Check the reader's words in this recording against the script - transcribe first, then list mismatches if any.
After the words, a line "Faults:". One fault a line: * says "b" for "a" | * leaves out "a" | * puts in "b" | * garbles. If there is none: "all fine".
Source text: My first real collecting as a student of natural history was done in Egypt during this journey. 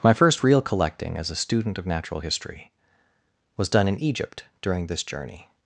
My first real collecting as a student of natural history was done in Egypt during this journey.
Faults:
all fine